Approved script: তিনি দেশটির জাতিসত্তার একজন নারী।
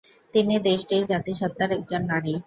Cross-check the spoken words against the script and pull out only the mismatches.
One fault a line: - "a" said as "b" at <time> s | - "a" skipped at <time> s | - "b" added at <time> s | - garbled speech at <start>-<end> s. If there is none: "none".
none